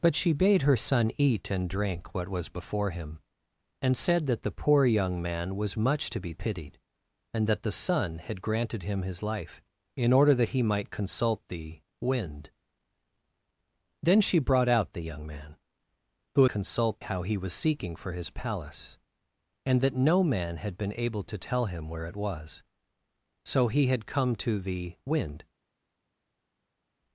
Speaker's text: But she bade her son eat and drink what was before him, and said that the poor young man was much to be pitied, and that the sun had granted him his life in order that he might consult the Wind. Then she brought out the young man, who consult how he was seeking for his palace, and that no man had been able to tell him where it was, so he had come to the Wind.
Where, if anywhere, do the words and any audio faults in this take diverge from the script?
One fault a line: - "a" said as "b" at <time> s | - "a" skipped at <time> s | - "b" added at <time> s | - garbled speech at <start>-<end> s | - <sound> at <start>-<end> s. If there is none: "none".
none